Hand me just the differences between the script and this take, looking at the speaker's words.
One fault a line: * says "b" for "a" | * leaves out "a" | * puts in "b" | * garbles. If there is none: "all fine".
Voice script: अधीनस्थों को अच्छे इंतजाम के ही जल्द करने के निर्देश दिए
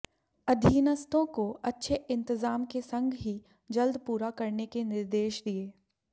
* puts in "संग"
* puts in "पूरा"